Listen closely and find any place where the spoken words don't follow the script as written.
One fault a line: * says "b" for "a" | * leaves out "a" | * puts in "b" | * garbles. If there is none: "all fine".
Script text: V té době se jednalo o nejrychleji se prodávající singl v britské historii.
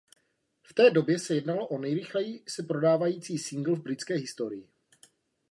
all fine